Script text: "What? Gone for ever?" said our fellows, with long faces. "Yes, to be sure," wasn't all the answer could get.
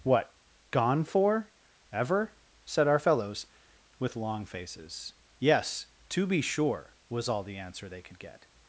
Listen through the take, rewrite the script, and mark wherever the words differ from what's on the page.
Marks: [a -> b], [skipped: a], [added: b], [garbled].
"What? Gone for ever?" said our fellows, with long faces. "Yes, to be sure," [wasn't -> was] all the answer [added: they] could get.